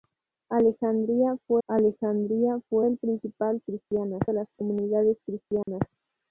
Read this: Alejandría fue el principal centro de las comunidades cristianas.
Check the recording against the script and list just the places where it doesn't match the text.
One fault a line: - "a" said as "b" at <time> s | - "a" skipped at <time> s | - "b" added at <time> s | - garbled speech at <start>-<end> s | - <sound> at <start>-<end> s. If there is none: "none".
- "alejandría fue" added at 1.7 s
- "centro" said as "cristianas" at 3.7 s
- dropout at 5.6-5.7 s